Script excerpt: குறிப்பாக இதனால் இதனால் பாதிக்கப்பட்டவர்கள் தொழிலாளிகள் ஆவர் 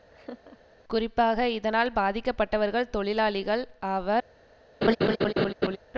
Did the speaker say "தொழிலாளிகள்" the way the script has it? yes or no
yes